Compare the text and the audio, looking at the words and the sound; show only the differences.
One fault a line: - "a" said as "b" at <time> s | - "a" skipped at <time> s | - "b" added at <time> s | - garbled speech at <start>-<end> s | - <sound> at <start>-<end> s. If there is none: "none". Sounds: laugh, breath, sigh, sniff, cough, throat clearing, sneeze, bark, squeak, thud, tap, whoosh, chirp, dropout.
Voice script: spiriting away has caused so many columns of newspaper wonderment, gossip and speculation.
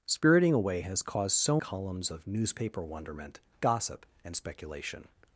- "many" skipped at 1.6 s